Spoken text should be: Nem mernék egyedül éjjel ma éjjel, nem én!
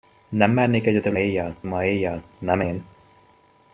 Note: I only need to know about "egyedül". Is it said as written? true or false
true